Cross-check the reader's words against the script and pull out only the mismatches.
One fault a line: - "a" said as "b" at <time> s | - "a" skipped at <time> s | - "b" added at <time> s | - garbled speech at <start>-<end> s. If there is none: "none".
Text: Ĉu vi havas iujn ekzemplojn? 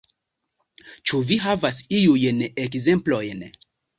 none